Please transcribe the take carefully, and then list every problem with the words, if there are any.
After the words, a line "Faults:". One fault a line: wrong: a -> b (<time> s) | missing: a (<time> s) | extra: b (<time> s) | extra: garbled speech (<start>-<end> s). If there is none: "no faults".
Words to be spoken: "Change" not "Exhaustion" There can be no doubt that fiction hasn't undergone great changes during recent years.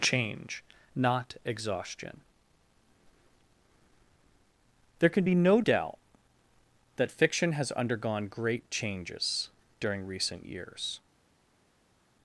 "Change" not "Exhaustion" There can be no doubt that fiction has undergone great changes during recent years.
Faults:
wrong: hasn't -> has (7.5 s)